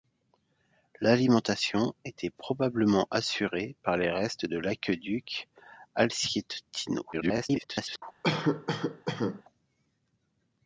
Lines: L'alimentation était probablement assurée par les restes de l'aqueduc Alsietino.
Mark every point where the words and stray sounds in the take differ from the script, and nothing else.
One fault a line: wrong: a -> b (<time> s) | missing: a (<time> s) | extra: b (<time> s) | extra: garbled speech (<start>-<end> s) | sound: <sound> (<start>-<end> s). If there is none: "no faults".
extra: garbled speech (7.1-8.0 s)
sound: cough (8.2-9.4 s)